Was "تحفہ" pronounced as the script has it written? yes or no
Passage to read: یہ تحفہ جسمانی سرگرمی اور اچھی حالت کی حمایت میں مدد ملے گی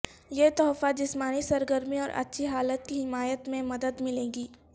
yes